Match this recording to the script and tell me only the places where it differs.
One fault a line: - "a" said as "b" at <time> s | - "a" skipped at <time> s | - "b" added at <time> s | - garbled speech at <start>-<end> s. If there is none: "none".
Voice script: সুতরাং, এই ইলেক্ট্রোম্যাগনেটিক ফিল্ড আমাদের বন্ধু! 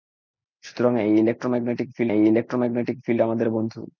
- "এই ইলেক্ট্রোম্যাগনেটিক ফিল্ড" added at 2.1 s